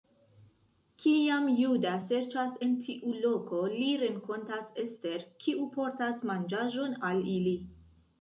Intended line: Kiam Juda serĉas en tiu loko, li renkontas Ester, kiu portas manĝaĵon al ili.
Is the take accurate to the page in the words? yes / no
yes